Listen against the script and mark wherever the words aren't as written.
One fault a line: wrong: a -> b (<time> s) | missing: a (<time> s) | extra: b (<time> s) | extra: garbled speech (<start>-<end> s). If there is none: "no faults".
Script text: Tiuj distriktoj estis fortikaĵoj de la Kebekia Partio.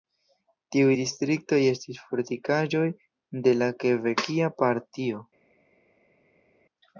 no faults